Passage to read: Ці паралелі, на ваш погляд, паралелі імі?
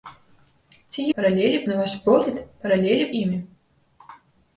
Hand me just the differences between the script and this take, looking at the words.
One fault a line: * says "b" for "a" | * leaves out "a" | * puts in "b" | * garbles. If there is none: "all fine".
all fine